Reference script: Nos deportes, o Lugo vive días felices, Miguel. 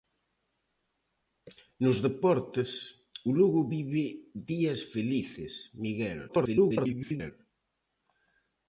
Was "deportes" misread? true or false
false